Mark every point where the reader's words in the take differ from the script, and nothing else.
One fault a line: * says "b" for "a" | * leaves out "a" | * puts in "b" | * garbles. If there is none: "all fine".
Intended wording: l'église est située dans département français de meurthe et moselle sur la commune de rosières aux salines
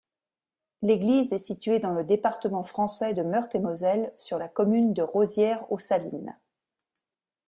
* puts in "le"